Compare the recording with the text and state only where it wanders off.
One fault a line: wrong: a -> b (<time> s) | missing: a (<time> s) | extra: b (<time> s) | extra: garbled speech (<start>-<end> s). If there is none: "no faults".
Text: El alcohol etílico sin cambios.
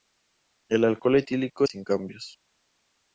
no faults